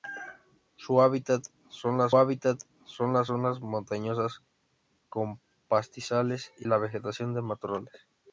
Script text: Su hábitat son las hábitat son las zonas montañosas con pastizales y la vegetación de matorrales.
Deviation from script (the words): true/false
false